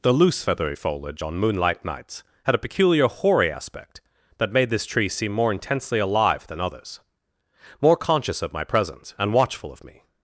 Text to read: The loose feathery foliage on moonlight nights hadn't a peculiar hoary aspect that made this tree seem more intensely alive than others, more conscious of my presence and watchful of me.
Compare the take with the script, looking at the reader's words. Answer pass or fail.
fail